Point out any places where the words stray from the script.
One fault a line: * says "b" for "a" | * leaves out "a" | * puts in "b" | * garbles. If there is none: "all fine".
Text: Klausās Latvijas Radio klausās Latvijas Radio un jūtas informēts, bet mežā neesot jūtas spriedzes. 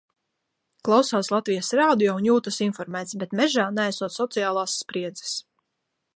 * leaves out "klausās Latvijas Radio"
* says "sociālās" for "jūtas"